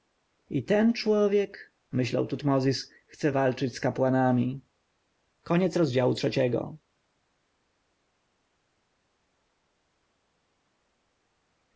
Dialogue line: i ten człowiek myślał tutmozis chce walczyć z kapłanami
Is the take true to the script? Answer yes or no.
yes